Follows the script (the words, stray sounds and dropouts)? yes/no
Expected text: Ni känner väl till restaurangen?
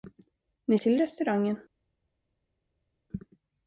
no